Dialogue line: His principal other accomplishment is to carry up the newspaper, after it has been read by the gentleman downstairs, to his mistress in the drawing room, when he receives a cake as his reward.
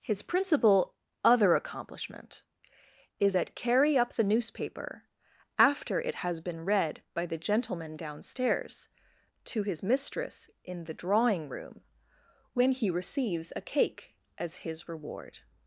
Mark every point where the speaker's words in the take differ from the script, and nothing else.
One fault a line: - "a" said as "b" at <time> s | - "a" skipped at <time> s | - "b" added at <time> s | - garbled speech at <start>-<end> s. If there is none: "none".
- "to" said as "at" at 3.4 s